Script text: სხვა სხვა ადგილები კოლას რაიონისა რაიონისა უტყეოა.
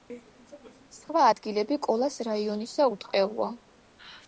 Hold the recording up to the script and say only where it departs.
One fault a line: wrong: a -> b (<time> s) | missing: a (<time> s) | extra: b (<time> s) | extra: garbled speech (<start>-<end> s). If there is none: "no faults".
missing: სხვა (1.2 s)
missing: რაიონისა (2.9 s)